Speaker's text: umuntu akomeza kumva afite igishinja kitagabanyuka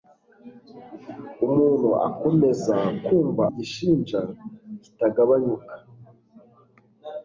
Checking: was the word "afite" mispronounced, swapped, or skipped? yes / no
yes